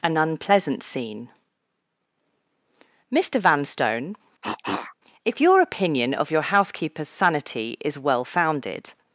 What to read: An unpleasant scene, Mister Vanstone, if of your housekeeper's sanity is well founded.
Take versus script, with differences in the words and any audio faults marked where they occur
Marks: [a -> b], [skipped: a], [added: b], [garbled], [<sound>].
An unpleasant scene, Mister Vanstone, [cough] if [added: your opinion] of your housekeeper's sanity is well founded.